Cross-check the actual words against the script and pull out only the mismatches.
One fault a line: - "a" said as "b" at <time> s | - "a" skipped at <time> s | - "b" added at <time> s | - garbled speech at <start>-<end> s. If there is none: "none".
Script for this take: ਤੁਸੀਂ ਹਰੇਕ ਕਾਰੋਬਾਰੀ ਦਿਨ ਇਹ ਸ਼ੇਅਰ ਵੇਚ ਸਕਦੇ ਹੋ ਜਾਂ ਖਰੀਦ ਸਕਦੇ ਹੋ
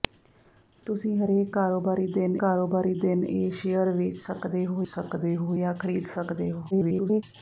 - "ਕਾਰੋਬਾਰੀ ਦਿਨ" added at 2.4 s
- "ਸਕਦੇ ਹੋ" added at 4.9 s
- garbled speech at 6.7-7.2 s